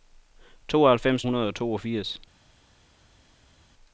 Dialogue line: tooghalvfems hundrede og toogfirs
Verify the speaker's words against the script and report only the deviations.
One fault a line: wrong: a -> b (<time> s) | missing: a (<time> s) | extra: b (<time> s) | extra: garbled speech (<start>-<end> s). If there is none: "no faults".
no faults